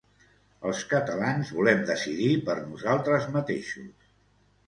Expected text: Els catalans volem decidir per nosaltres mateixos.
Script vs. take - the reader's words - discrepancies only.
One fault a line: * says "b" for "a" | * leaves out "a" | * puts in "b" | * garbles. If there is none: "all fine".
all fine